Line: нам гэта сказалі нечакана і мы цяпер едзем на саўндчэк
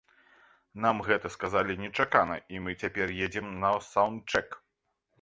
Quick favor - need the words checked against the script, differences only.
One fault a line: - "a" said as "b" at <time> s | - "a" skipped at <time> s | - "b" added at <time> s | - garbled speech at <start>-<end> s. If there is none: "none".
none